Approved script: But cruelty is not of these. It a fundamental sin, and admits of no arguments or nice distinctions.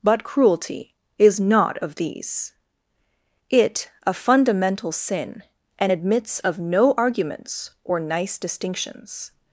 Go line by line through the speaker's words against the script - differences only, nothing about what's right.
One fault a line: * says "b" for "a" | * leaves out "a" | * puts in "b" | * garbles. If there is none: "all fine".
all fine